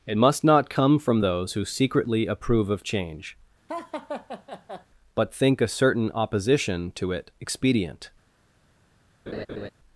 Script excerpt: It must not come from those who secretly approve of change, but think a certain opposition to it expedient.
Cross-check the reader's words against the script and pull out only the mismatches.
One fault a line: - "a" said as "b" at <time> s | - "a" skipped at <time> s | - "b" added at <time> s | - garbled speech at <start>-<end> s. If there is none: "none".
none